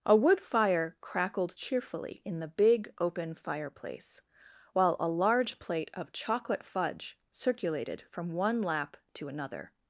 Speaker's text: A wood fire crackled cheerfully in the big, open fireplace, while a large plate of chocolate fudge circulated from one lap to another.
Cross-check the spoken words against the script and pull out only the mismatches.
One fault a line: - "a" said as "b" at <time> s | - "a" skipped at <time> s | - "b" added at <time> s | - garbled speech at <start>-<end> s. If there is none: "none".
none